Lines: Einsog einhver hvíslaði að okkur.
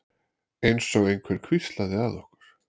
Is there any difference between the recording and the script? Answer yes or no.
no